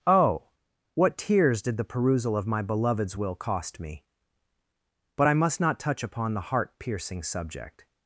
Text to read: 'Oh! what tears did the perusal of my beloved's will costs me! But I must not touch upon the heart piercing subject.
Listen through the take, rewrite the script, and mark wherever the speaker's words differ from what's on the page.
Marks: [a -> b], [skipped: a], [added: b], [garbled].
'Oh! what tears did the perusal of my beloved's will [costs -> cost] me! But I must not touch upon the heart piercing subject.